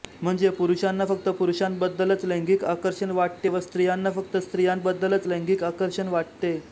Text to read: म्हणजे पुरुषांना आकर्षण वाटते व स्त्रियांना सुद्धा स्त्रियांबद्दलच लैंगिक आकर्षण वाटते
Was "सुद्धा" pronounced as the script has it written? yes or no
no